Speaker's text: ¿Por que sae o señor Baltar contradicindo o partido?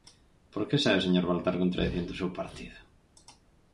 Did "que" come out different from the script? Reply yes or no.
no